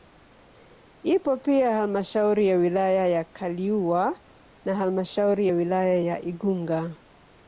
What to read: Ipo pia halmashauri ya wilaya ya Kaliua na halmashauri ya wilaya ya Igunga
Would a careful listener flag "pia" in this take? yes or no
no